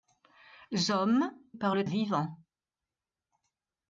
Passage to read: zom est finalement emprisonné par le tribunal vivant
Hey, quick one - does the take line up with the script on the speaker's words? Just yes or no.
no